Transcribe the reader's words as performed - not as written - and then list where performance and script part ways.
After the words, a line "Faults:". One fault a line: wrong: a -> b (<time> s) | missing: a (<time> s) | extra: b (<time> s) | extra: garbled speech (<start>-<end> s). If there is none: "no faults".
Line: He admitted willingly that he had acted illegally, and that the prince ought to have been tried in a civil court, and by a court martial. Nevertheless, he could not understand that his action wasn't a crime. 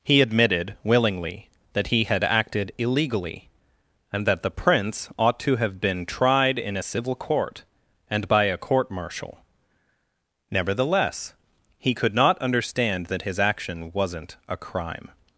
He admitted willingly that he had acted illegally, and that the prince ought to have been tried in a civil court, and by a court martial. Nevertheless, he could not understand that his action wasn't a crime.
Faults:
no faults